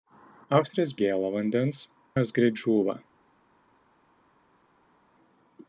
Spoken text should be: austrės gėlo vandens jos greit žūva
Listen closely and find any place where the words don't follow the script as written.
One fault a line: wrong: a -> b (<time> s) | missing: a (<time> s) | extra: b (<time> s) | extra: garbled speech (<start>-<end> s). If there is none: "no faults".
no faults